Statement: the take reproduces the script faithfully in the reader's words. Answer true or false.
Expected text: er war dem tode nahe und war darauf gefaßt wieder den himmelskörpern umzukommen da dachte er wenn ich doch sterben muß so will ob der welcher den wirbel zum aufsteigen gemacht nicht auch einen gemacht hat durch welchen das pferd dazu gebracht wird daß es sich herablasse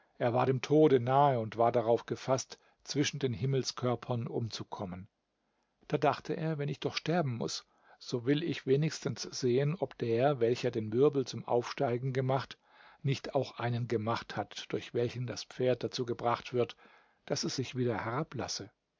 false